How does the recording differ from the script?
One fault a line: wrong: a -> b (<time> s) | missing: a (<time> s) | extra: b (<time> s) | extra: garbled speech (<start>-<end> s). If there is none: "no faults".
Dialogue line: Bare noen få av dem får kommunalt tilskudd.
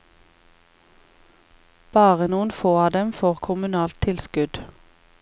no faults